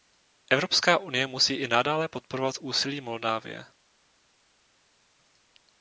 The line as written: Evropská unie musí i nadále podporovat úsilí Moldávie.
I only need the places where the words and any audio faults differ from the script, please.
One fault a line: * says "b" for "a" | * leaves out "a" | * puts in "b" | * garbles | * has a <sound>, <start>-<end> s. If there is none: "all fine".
all fine